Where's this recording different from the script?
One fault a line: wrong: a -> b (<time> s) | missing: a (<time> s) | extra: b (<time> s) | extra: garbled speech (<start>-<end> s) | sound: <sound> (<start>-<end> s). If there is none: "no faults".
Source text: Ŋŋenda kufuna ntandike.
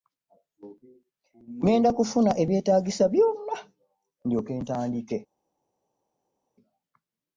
extra: ebyetaagisa byonna ndyoke (2.4 s)